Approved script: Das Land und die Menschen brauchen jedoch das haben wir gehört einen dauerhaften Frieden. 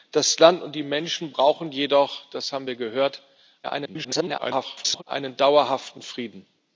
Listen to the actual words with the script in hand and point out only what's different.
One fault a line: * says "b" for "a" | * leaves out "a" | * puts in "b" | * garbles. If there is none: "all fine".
* garbles